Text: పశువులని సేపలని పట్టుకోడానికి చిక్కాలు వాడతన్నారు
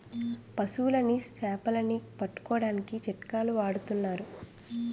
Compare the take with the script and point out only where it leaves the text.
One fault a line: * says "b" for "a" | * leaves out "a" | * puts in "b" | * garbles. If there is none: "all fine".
all fine